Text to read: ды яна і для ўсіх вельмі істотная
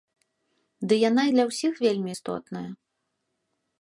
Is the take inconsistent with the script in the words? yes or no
no